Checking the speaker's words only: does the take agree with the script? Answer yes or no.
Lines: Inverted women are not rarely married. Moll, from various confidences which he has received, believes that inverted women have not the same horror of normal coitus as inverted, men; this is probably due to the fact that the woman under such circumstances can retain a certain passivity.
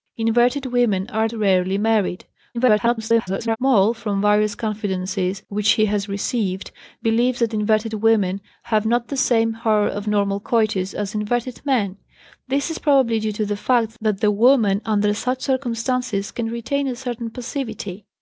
no